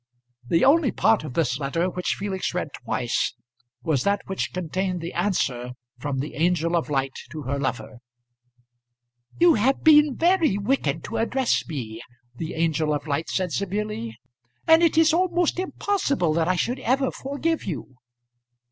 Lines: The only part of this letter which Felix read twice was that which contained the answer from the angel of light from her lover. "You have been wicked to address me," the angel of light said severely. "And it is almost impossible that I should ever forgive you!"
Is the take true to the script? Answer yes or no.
no